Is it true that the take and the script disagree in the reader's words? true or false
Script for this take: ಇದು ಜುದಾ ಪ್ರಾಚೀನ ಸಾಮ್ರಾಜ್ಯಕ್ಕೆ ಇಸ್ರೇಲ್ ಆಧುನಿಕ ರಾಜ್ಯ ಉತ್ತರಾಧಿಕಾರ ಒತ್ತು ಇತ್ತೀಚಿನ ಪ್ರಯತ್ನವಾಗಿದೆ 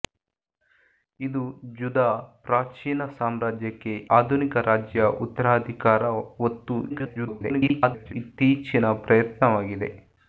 true